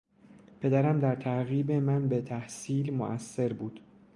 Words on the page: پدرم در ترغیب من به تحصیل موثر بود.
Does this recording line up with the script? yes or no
yes